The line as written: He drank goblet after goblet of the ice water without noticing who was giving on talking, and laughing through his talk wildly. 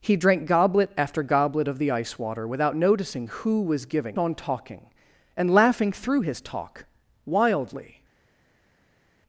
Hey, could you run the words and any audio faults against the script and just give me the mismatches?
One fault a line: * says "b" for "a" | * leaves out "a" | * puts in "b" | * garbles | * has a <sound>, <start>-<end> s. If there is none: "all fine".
all fine